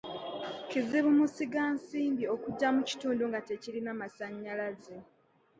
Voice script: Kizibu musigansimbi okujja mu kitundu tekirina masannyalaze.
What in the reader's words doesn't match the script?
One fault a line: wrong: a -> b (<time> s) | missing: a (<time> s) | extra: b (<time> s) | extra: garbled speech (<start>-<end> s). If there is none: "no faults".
extra: nga (3.3 s)